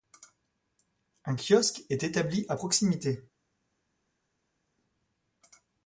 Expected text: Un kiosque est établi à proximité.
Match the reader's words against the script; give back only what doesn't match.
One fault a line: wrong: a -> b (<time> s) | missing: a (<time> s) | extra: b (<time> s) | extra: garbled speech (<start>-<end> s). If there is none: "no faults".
no faults